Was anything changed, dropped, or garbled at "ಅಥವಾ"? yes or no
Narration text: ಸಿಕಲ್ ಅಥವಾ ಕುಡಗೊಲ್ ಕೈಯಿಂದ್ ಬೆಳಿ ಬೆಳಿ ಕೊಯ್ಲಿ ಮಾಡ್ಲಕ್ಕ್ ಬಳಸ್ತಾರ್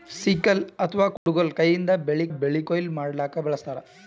no